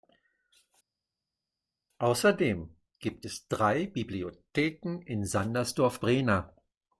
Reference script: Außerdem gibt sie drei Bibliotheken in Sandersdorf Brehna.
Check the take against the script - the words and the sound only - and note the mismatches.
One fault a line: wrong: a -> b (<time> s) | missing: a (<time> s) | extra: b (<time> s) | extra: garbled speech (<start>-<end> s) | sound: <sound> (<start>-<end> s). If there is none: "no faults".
wrong: sie -> es (3.2 s)